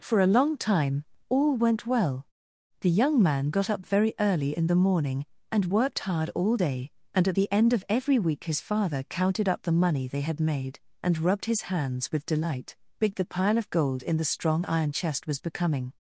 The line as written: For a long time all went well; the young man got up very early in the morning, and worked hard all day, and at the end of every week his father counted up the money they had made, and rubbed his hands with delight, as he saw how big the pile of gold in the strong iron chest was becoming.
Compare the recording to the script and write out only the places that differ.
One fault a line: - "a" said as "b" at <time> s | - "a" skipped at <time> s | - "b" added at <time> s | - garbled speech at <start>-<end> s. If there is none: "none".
- "as he saw how" skipped at 12.8 s